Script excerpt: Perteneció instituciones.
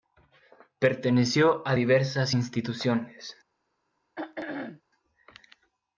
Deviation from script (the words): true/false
true